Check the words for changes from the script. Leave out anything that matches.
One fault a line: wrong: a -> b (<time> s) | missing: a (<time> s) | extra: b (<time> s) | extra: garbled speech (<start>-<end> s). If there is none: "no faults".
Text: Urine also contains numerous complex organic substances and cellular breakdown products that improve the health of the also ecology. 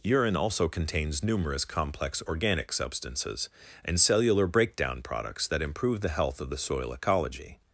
wrong: also -> soil (6.6 s)